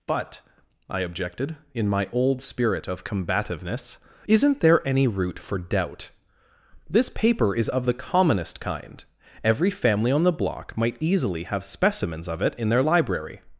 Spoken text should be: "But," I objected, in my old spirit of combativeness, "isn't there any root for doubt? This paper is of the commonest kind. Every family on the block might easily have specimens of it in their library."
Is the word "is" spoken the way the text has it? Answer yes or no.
yes